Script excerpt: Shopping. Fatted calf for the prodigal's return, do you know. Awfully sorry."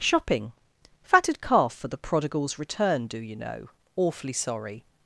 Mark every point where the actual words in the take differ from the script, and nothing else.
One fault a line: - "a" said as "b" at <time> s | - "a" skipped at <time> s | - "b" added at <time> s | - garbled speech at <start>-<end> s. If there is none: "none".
none